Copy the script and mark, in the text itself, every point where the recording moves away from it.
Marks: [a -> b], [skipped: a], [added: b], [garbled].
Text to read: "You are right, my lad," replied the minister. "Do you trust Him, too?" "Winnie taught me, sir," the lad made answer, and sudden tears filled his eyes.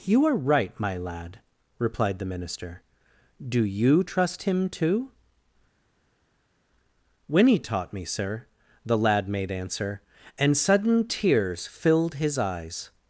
"You are right, my lad," replied the minister. "Do you trust Him, too?" "Winnie taught me, sir," the lad made answer, and sudden tears filled his eyes.